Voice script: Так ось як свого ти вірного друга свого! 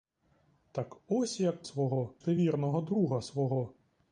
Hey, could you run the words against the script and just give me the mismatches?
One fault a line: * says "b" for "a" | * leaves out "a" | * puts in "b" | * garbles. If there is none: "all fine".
all fine